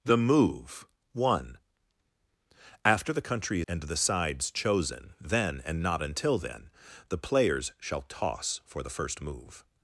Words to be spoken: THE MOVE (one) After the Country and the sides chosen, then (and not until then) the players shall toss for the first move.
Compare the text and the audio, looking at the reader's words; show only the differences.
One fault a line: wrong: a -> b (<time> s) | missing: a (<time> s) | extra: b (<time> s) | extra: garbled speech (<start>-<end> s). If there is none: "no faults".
no faults